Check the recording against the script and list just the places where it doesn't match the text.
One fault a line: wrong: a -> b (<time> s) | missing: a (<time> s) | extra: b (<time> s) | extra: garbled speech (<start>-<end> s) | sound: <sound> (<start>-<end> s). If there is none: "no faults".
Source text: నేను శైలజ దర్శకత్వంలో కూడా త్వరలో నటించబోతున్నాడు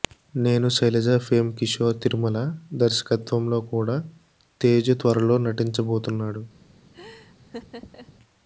extra: ఫేమ్ కిషోర్ తిరుమల (1.2 s)
extra: తేజు (4.6 s)
sound: laugh (6.9-8.2 s)